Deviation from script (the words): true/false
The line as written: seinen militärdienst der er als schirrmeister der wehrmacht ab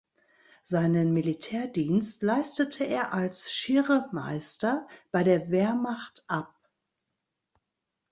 true